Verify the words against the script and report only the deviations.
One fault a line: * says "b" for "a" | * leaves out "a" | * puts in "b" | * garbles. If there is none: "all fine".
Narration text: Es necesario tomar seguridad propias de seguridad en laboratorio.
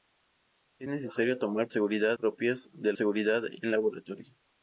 all fine